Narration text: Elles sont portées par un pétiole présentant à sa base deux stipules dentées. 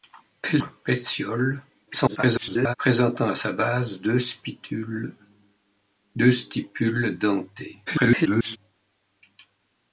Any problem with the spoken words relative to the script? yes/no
yes